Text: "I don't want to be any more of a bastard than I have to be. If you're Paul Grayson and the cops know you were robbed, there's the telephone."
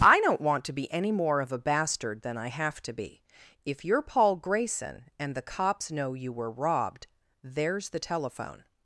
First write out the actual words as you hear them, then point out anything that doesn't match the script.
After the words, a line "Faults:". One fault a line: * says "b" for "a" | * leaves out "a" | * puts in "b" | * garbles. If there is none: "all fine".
"I don't want to be any more of a bastard than I have to be. If you're Paul Grayson and the cops know you were robbed, there's the telephone."
Faults:
all fine